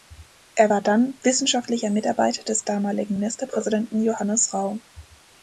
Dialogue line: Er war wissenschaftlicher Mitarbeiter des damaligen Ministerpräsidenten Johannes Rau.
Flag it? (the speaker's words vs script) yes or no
yes